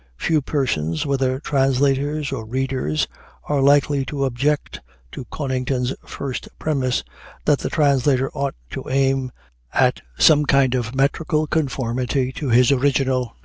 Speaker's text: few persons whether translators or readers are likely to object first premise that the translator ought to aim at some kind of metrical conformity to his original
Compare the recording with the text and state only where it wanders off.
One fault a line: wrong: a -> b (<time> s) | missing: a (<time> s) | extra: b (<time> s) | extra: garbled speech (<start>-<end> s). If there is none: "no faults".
extra: to conington's (5.1 s)